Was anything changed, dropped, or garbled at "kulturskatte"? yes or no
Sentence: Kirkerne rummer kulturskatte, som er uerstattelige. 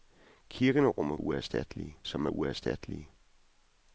yes